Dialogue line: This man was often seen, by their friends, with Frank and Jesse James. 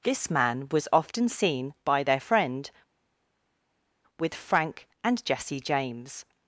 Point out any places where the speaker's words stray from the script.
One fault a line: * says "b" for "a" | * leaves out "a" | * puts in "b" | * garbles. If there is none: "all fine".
* says "friend" for "friends"